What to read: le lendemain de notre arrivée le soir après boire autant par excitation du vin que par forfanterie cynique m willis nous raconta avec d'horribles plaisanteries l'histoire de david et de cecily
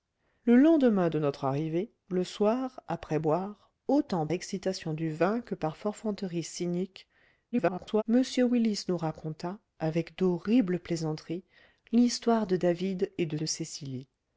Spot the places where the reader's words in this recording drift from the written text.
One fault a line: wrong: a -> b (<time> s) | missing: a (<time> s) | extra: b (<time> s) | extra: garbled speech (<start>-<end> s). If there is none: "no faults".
missing: par (4.3 s)
extra: garbled speech (7.5-8.0 s)
extra: de (13.4 s)